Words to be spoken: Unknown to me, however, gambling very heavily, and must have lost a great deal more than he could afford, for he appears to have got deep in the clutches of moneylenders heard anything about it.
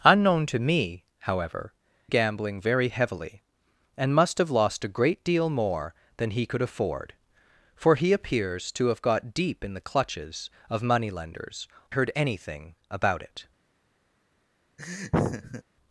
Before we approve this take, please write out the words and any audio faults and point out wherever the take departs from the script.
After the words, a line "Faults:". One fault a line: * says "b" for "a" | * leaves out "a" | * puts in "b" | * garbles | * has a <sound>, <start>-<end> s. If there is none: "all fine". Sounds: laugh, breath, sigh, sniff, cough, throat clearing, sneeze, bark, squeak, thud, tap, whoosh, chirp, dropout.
Unknown to me, however, gambling very heavily, and must have lost a great deal more than he could afford, for he appears to have got deep in the clutches of moneylenders heard anything about it.
Faults:
* has a laugh, 14.8-15.6 s